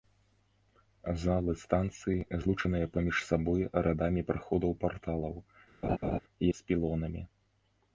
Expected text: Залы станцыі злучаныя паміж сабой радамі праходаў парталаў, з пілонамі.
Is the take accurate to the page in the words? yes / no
yes